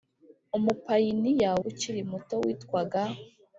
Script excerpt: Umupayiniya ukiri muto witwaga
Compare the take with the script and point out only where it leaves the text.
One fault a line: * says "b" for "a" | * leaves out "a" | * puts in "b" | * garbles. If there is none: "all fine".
all fine